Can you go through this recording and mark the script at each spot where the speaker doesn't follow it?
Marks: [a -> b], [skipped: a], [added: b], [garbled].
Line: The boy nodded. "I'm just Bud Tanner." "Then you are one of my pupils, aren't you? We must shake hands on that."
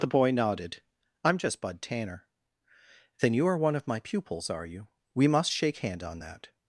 The boy nodded. "I'm just Bud Tanner." "Then you are one of my pupils, [aren't -> are] you? We must shake [hands -> hand] on that."